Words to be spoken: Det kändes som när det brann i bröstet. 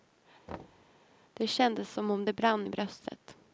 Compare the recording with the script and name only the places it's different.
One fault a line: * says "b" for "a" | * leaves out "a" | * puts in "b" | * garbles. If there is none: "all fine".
* says "om" for "när"